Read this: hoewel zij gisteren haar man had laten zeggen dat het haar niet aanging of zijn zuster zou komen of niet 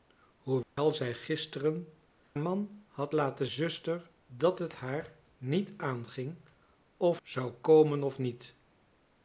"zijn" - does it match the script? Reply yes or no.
no